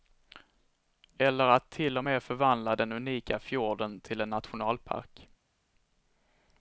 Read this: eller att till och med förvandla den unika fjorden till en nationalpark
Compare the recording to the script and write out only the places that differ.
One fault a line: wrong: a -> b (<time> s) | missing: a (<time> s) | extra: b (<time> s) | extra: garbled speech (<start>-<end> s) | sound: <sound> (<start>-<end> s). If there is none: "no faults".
no faults